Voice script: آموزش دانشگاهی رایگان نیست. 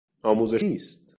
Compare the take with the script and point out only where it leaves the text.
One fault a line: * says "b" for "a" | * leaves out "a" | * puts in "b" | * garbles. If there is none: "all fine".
* leaves out "دانشگاهی رایگان"